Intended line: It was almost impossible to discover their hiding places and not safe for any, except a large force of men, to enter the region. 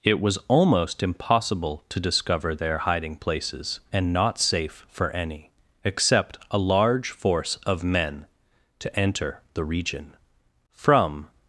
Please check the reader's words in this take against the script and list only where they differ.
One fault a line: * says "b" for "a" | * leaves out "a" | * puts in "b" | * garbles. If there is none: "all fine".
* puts in "From"